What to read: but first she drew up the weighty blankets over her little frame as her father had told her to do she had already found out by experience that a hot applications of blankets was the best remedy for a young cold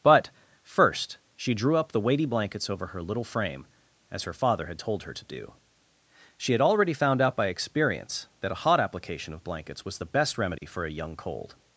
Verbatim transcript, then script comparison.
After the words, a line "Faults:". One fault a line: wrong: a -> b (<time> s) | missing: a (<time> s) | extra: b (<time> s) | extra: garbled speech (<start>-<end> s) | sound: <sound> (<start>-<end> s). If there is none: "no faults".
but first she drew up the weighty blankets over her little frame as her father had told her to do she had already found out by experience that a hot application of blankets was the best remedy for a young cold
Faults:
wrong: applications -> application (8.8 s)
sound: dropout (10.6-10.6 s)